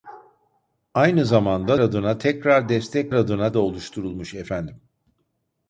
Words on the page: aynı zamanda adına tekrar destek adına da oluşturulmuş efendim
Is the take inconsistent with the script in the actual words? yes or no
no